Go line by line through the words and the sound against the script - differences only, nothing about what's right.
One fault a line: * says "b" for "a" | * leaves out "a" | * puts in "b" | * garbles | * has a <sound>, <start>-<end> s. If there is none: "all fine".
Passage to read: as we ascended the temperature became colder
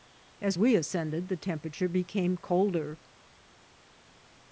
all fine